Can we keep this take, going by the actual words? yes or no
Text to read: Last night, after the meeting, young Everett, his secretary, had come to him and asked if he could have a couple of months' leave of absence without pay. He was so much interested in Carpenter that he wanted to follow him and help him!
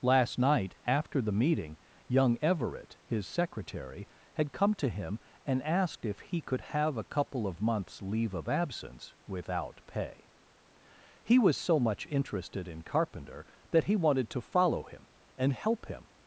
yes